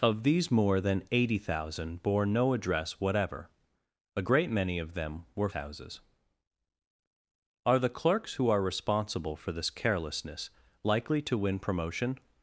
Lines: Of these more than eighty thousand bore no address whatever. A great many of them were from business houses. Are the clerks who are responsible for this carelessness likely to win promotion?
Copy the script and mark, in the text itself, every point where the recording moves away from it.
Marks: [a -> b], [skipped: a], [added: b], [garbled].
Of these more than eighty thousand bore no address whatever. A great many of them were [skipped: from business] houses. Are the clerks who are responsible for this carelessness likely to win promotion?